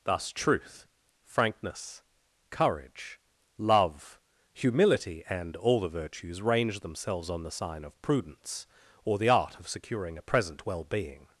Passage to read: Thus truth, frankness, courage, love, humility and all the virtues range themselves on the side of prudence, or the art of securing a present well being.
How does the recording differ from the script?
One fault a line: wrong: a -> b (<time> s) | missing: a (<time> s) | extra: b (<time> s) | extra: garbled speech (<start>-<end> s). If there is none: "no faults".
wrong: side -> sign (7.5 s)